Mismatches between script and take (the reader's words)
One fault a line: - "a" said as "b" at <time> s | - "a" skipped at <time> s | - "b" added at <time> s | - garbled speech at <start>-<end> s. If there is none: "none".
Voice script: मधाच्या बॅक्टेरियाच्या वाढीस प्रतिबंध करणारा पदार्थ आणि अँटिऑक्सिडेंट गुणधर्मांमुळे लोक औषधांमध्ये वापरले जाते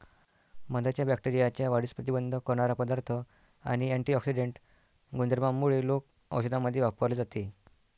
none